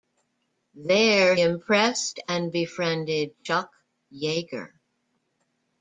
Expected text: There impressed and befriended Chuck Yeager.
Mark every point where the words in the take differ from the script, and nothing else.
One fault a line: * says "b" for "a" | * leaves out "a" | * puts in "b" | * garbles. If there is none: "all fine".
all fine